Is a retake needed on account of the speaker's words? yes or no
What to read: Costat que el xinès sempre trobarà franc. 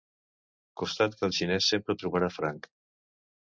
no